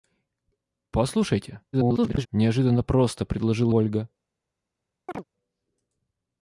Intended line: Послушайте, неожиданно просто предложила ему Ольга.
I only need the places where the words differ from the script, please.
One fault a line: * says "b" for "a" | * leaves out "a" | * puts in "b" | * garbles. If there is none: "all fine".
* garbles
* leaves out "ему"